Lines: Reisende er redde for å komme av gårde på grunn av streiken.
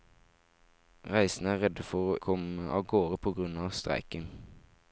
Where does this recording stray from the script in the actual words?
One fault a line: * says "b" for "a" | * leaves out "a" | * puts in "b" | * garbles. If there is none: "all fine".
all fine